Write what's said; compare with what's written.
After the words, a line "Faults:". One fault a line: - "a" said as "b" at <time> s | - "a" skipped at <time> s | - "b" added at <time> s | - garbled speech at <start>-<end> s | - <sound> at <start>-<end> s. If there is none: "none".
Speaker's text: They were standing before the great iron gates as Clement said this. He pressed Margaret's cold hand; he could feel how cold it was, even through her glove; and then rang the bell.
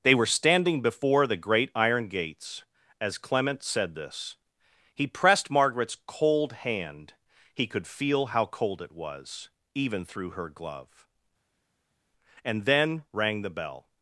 They were standing before the great iron gates as Clement said this. He pressed Margaret's cold hand; he could feel how cold it was, even through her glove; and then rang the bell.
Faults:
none